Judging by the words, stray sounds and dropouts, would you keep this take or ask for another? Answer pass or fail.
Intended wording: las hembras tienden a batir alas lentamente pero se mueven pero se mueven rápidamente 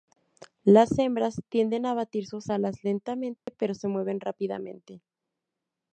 fail